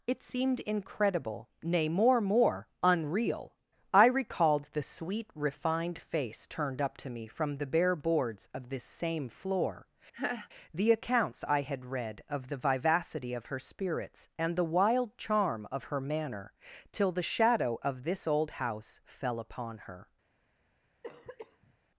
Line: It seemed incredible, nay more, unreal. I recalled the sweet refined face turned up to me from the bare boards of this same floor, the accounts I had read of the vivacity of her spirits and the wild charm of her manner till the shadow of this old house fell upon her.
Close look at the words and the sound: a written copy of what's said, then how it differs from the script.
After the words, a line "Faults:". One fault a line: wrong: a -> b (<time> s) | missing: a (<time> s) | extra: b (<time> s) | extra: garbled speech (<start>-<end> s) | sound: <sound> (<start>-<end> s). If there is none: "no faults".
It seemed incredible, nay more more, unreal. I recalled the sweet refined face turned up to me from the bare boards of this same floor, the accounts I had read of the vivacity of her spirits and the wild charm of her manner till the shadow of this old house fell upon her.
Faults:
extra: more (2.2 s)
sound: laugh (10.1-10.5 s)
sound: cough (21.0-21.8 s)